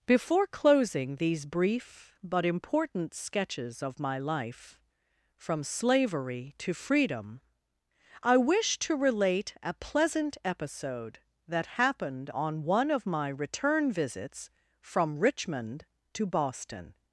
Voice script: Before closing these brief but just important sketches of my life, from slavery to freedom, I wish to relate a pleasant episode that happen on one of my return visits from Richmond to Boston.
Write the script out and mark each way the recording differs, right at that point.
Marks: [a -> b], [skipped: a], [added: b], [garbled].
Before closing these brief but [skipped: just] important sketches of my life, from slavery to freedom, I wish to relate a pleasant episode that [happen -> happened] on one of my return visits from Richmond to Boston.